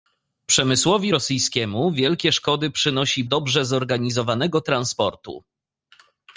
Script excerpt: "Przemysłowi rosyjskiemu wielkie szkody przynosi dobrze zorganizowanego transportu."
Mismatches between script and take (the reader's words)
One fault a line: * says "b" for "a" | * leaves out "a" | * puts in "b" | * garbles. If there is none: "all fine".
all fine